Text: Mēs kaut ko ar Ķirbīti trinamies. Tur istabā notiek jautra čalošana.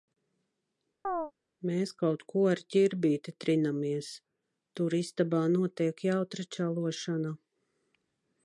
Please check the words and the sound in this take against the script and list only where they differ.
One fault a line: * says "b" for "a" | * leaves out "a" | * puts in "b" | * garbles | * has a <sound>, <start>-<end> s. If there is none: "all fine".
* has a chirp, 1.0-1.3 s